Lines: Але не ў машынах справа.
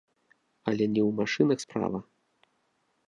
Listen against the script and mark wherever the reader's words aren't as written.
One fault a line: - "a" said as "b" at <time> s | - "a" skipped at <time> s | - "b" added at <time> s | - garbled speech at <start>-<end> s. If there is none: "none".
none